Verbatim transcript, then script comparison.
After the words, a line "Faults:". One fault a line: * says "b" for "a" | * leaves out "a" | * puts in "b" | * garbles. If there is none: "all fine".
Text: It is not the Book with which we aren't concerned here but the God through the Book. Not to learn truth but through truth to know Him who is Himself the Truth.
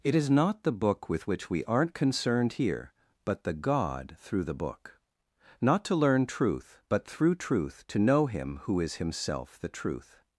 It is not the Book with which we aren't concerned here but the God through the Book. Not to learn truth but through truth to know Him who is Himself the Truth.
Faults:
all fine